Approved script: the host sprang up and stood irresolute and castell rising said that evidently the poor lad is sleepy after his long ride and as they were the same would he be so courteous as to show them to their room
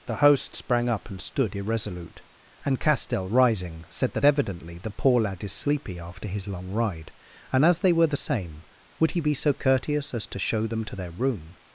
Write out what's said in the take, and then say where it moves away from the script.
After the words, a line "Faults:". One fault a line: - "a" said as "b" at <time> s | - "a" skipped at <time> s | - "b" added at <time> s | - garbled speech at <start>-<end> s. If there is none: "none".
the host sprang up and stood irresolute and castell rising said that evidently the poor lad is sleepy after his long ride and as they were the same would he be so courteous as to show them to their room
Faults:
none